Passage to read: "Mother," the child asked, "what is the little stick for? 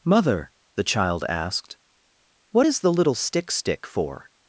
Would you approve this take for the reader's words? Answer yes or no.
no